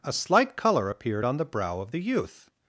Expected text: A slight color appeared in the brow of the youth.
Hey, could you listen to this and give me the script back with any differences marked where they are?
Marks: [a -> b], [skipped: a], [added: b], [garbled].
A slight color appeared [in -> on] the brow of the youth.